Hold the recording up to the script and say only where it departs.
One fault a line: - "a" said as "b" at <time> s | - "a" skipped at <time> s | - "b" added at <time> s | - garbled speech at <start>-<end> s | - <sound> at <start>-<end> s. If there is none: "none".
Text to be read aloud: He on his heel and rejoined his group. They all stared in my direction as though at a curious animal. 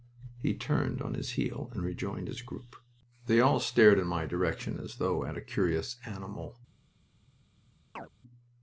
- "turned" added at 0.6 s
- chirp at 8.0-8.1 s